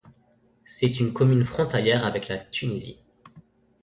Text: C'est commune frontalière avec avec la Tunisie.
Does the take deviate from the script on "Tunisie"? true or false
false